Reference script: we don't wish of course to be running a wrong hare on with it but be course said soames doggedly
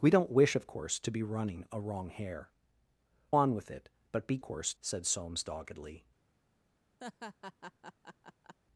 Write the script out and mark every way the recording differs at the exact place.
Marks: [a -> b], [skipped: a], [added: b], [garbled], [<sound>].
we don't wish of course to be running a wrong hare on with it but be course said soames doggedly [laugh]